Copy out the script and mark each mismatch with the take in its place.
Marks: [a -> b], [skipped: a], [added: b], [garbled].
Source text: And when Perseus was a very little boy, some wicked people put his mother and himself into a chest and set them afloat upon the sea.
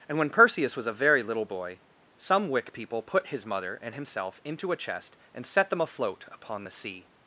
And when Perseus was a very little boy, some [wicked -> wick] people put his mother and himself into a chest and set them afloat upon the sea.